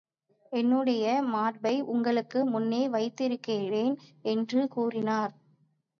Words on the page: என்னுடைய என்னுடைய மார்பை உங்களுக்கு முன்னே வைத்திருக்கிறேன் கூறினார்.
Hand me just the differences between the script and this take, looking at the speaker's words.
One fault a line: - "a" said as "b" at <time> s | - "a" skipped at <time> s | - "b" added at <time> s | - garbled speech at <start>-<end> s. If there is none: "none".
- "என்னுடைய" skipped at 1.2 s
- "என்று" added at 4.2 s